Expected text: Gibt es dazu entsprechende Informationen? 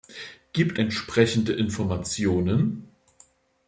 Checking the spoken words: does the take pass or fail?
fail